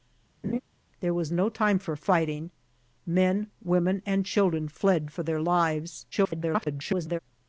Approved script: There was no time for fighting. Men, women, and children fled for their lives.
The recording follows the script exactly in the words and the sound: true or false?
false